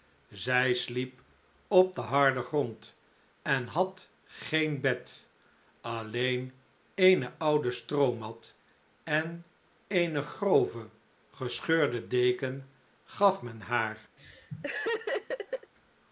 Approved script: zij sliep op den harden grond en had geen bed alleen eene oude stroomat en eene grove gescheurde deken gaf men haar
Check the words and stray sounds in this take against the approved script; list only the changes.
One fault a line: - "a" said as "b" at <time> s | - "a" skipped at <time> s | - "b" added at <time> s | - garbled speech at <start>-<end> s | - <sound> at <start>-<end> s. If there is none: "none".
- laugh at 14.2-15.7 s